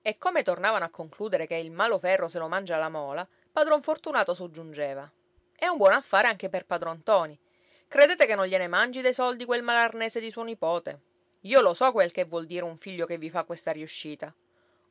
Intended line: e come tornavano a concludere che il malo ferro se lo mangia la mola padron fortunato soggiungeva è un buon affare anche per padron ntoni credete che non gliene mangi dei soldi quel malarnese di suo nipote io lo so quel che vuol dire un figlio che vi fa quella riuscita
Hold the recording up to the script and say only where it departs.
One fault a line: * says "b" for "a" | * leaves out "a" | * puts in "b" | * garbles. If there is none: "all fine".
* says "questa" for "quella"